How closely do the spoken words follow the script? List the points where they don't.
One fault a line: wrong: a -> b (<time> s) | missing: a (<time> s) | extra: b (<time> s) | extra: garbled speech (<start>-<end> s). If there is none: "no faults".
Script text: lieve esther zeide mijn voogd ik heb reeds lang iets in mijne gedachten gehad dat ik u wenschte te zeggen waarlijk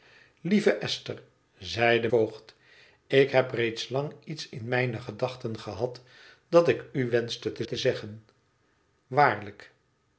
missing: mijn (2.1 s)
extra: te (7.6 s)